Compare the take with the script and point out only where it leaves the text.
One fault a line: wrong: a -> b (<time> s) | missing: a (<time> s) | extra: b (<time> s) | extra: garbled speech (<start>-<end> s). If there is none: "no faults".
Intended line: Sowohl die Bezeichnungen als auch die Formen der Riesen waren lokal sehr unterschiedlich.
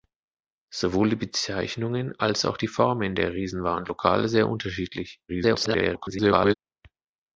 extra: garbled speech (5.3-6.5 s)